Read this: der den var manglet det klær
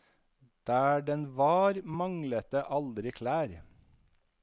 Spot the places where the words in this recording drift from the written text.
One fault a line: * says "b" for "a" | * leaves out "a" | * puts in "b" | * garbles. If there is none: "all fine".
* puts in "aldri"